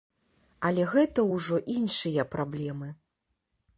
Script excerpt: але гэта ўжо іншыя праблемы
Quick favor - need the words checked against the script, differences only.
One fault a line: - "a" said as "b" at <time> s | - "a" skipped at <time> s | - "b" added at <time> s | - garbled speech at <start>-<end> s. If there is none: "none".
none